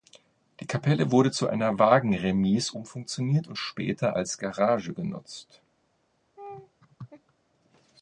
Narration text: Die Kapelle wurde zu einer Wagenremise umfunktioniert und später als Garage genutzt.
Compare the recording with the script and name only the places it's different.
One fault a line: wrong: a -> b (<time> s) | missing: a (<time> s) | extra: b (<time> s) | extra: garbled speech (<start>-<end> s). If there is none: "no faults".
no faults